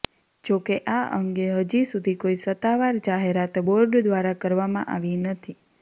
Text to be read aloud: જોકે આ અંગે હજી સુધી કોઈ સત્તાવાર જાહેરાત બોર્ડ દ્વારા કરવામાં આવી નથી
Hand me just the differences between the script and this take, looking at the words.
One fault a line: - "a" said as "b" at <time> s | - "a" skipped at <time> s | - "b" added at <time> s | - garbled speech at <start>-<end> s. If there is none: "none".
none